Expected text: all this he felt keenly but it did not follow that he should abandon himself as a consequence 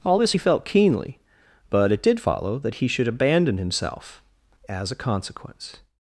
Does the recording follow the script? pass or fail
fail